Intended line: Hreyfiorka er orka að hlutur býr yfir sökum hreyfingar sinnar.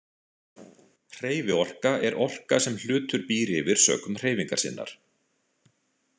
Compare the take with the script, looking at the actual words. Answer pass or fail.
fail